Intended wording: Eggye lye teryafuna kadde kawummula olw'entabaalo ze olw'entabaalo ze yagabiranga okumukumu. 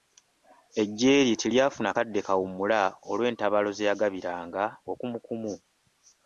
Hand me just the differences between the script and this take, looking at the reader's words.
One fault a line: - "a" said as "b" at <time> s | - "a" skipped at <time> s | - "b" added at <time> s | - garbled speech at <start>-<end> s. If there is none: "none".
- "olw'entabaalo ze" skipped at 3.9 s